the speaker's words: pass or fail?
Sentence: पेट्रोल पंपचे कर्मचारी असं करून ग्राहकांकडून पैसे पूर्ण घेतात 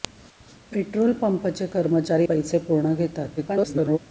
fail